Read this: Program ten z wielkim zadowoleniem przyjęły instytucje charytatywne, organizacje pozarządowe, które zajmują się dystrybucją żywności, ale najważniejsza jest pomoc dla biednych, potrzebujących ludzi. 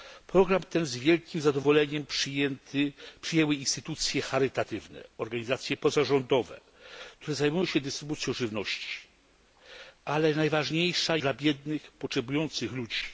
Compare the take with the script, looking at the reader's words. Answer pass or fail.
fail